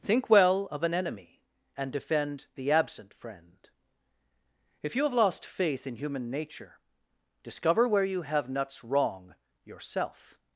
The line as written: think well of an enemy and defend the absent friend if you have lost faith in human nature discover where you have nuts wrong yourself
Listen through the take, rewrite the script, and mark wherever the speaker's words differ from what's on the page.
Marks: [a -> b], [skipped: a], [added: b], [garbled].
think well of an enemy and defend the absent friend if you have lost faith in human nature discover where you have nuts wrong yourself